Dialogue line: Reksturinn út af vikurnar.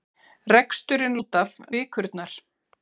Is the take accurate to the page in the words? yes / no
yes